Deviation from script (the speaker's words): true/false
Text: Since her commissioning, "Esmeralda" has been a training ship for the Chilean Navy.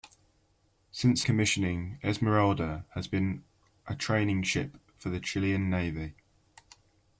true